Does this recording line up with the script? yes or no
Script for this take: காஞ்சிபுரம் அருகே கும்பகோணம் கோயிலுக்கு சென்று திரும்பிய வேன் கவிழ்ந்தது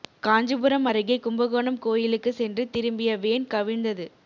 yes